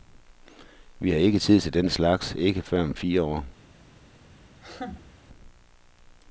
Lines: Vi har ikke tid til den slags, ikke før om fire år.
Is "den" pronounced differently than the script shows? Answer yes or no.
no